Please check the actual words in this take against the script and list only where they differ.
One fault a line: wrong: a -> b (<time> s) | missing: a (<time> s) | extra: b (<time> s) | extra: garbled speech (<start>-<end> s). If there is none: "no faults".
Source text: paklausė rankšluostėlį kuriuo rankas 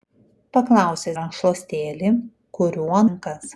no faults